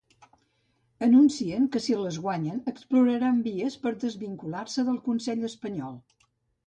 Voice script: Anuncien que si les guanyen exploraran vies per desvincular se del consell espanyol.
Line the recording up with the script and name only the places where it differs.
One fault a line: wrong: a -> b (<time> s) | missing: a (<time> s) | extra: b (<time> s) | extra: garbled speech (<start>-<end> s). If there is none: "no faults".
no faults